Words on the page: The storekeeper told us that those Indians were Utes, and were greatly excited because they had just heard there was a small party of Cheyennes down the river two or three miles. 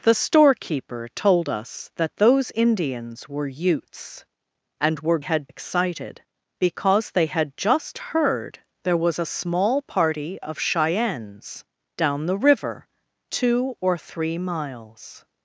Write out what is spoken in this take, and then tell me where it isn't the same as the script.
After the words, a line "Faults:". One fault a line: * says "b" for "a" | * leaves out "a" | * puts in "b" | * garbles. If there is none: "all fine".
The storekeeper told us that those Indians were Utes, and were had excited because they had just heard there was a small party of Cheyennes down the river two or three miles.
Faults:
* says "had" for "greatly"